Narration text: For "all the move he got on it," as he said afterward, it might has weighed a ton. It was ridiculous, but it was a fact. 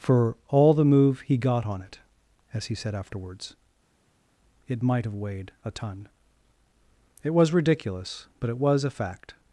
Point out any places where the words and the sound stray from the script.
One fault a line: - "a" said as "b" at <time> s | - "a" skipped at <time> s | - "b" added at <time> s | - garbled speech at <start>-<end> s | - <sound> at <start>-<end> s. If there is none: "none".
- "afterward" said as "afterwards" at 3.0 s
- "has" said as "have" at 5.0 s